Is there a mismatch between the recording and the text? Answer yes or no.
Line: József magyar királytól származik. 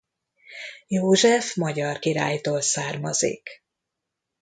no